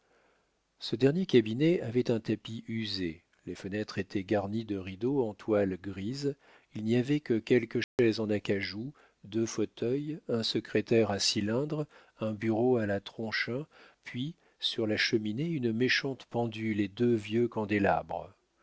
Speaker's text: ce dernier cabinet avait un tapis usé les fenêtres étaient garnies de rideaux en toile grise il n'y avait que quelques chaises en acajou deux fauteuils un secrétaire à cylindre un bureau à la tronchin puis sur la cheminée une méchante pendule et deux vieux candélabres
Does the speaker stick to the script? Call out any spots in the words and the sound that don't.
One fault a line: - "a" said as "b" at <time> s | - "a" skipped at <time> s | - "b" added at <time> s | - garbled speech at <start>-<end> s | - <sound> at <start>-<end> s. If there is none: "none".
- dropout at 7.8-8.0 s